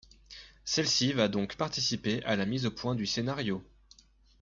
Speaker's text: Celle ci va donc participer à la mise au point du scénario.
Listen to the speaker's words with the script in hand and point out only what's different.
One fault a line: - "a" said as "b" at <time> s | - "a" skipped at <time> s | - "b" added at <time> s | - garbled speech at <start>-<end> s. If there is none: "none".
none